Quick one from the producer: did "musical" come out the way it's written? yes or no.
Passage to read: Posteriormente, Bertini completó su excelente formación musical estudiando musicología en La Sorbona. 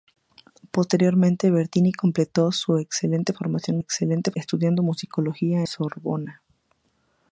no